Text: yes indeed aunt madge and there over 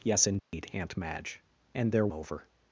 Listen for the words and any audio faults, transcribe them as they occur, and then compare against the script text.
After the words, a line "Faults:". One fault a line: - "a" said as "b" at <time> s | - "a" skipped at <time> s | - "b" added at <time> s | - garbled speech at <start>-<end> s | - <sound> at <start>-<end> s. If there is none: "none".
yes indeed aunt madge and there over
Faults:
- dropout at 0.4-0.5 s